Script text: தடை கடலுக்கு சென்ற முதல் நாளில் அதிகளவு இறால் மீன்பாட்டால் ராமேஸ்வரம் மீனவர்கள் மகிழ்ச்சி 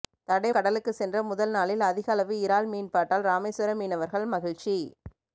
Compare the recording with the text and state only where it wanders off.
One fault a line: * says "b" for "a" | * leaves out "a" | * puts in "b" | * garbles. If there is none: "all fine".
all fine